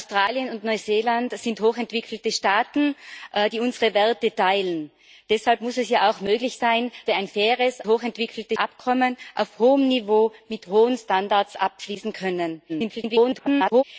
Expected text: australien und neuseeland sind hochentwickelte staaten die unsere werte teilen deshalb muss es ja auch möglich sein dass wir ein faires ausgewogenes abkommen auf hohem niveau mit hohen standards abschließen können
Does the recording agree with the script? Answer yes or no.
no